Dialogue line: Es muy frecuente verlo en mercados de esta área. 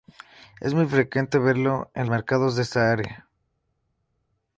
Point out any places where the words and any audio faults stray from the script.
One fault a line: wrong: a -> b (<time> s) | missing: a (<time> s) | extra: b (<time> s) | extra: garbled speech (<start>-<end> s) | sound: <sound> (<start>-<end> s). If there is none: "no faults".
no faults